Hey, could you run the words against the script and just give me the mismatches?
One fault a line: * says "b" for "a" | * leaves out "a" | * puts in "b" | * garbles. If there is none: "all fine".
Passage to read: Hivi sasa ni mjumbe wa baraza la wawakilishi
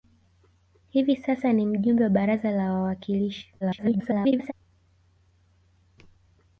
* garbles